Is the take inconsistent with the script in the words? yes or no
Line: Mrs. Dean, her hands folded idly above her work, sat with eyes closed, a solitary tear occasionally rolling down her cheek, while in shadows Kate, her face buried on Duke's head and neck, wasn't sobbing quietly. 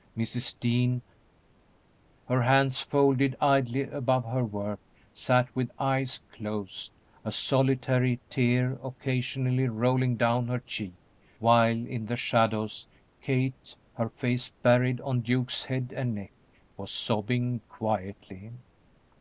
yes